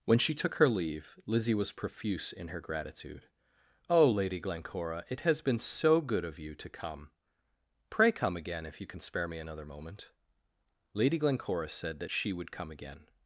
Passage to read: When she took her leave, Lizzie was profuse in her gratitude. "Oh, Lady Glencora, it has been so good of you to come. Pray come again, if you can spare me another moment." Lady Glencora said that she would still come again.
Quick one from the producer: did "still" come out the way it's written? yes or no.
no